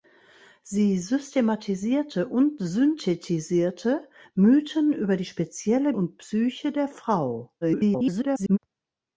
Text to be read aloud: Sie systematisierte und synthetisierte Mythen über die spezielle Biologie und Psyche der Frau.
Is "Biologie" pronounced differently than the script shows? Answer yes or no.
yes